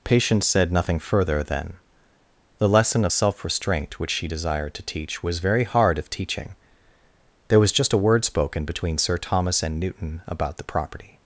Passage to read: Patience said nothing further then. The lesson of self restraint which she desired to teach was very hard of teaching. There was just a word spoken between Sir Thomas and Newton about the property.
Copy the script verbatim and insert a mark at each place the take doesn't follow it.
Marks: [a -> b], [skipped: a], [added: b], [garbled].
Patience said nothing further then. The lesson of self restraint which she desired to teach was very hard of teaching. There was just a word spoken between Sir Thomas and Newton about the property.